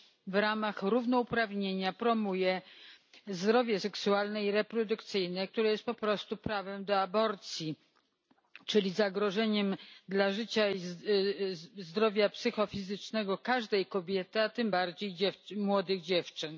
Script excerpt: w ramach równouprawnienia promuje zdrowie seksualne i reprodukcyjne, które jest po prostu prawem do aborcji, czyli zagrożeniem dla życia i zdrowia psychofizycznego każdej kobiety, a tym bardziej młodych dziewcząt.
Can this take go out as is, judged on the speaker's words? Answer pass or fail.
pass